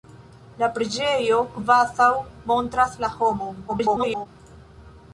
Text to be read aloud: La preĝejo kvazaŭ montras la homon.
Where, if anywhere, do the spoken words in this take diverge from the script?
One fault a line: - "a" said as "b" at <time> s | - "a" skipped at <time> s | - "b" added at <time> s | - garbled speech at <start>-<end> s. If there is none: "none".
- garbled speech at 3.7-4.3 s